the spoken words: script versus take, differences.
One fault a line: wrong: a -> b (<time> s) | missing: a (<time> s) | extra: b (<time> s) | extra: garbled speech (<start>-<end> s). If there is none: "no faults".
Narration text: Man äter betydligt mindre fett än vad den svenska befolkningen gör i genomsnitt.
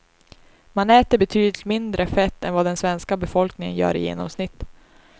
no faults